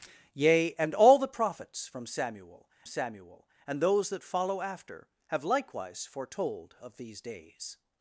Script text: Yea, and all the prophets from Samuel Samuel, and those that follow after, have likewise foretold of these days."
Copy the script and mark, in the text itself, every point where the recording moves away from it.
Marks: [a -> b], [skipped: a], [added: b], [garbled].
Yea, and all the prophets from Samuel Samuel, and those that follow after, have likewise foretold of these days."